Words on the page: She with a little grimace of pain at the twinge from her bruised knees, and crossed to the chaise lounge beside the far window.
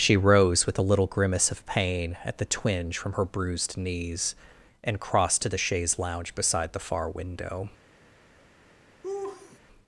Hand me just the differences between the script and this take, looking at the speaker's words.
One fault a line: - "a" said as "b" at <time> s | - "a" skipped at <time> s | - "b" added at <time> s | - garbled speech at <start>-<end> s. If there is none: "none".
- "rose" added at 0.2 s